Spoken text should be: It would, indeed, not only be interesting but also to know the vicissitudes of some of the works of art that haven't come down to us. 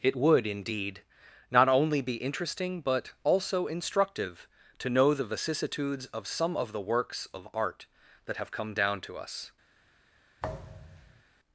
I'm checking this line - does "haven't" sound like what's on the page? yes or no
no